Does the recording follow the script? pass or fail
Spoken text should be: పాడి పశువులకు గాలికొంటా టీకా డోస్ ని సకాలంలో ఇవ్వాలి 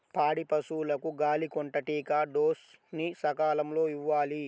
pass